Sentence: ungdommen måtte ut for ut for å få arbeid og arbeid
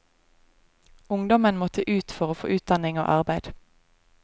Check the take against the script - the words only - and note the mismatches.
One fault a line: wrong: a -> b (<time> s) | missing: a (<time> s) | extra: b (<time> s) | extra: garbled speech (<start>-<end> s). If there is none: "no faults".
missing: ut for (2.3 s)
wrong: arbeid -> utdanning (2.6 s)